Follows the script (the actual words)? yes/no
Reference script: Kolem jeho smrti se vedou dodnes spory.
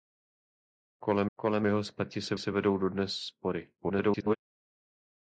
no